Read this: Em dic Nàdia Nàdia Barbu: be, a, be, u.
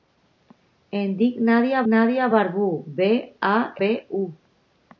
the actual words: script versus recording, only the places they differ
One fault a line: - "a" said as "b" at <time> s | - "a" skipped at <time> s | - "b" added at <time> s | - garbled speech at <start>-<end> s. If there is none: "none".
none